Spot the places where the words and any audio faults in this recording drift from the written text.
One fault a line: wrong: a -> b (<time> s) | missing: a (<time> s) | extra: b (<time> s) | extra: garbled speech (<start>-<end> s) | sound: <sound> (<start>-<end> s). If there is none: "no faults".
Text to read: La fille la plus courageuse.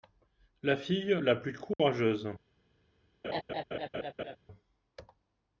sound: dropout (1.7-1.8 s)
sound: laugh (3.2-4.4 s)